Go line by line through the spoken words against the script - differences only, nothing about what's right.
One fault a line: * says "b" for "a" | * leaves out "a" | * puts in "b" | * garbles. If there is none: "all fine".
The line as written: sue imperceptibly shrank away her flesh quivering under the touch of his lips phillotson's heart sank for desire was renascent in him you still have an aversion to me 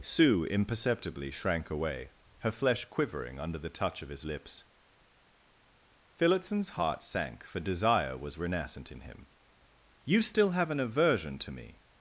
all fine